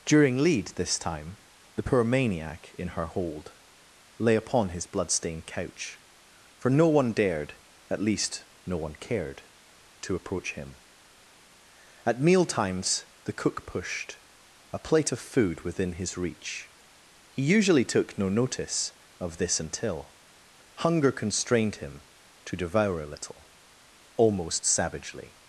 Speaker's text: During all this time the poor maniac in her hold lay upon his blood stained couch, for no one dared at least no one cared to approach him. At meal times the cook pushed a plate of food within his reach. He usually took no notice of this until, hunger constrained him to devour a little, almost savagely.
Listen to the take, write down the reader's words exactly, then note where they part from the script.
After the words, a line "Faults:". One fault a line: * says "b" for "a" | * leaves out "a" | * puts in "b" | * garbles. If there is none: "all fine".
During lead this time the poor maniac in her hold lay upon his blood stained couch, for no one dared at least no one cared to approach him. At meal times the cook pushed a plate of food within his reach. He usually took no notice of this until, hunger constrained him to devour a little, almost savagely.
Faults:
* says "lead" for "all"